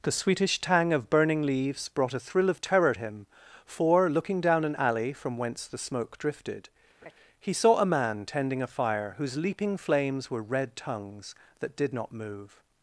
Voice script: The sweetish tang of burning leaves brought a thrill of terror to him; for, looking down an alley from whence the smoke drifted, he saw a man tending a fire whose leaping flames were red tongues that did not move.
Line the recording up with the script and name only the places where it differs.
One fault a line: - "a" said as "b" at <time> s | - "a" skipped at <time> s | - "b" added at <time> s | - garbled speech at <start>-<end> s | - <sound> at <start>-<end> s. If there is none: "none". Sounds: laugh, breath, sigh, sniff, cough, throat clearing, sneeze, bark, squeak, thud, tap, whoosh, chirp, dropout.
- "to" skipped at 3.0 s
- laugh at 7.0-7.1 s